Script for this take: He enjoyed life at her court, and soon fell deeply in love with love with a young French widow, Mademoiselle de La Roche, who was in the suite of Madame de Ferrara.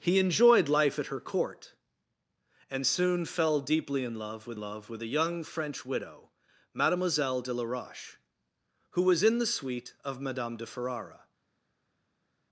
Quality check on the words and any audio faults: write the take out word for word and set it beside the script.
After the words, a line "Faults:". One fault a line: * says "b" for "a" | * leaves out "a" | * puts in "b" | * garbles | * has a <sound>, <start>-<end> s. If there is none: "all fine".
He enjoyed life at her court, and soon fell deeply in love with love with a young French widow, Mademoiselle de La Roche, who was in the suite of Madame de Ferrara.
Faults:
all fine